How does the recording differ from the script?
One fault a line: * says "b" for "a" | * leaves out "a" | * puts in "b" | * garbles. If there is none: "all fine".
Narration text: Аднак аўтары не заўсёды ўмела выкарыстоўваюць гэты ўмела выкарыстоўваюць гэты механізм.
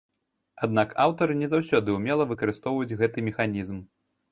* leaves out "ўмела выкарыстоўваюць гэты"